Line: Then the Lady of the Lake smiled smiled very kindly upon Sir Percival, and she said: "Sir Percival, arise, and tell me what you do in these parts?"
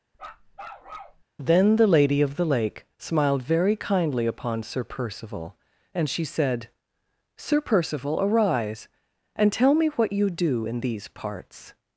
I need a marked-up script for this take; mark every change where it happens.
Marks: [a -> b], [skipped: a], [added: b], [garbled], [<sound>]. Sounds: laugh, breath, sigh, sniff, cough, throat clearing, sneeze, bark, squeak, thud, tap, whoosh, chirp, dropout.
[bark] Then the Lady of the Lake smiled [skipped: smiled] very kindly upon Sir Percival, and she said: "Sir Percival, arise, and tell me what you do in these parts?"